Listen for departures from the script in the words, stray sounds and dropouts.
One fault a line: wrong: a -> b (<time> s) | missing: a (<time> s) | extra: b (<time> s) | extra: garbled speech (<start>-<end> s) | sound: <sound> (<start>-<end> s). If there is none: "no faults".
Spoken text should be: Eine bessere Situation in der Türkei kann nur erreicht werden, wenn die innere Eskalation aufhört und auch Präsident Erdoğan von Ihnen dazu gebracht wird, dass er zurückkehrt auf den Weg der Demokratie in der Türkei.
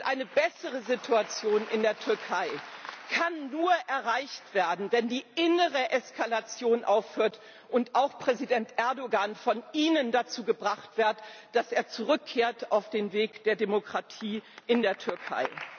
no faults